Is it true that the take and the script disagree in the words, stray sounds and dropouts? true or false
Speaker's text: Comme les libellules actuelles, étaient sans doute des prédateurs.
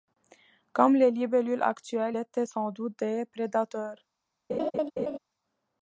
true